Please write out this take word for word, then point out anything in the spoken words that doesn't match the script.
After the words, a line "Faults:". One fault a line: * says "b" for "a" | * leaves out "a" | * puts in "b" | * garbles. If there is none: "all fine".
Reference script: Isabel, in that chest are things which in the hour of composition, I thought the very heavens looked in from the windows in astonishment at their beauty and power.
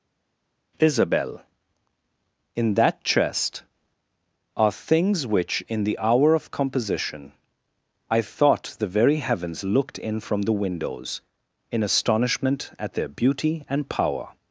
Isabel, in that chest are things which in the hour of composition, I thought the very heavens looked in from the windows in astonishment at their beauty and power.
Faults:
all fine